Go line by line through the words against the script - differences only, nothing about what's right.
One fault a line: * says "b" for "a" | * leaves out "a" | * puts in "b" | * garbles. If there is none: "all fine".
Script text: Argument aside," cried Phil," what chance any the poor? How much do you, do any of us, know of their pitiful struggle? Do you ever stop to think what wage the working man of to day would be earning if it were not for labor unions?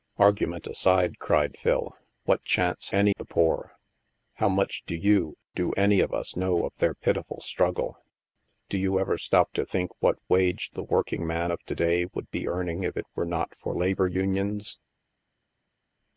all fine